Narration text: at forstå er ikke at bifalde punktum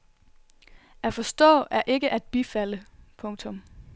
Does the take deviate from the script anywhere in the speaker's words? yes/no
no